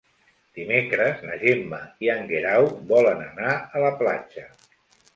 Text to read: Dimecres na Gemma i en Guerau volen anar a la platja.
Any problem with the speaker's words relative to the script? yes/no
no